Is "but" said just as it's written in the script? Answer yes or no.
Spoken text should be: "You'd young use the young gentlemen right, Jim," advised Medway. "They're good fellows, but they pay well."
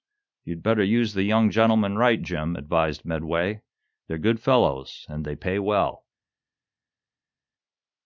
no